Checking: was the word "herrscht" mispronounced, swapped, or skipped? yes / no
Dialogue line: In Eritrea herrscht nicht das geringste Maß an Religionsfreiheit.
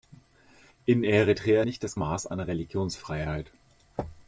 yes